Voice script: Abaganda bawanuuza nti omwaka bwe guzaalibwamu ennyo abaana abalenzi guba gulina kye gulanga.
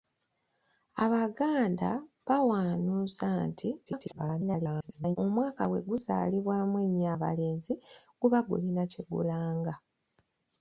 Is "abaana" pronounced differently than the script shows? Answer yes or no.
yes